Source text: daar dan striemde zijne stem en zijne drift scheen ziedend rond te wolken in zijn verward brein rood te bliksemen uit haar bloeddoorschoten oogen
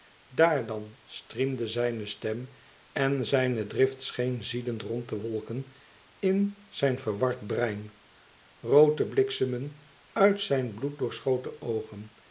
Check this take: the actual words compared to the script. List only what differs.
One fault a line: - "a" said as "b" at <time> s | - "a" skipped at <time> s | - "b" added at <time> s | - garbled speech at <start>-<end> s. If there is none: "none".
- "haar" said as "zijn" at 10.4 s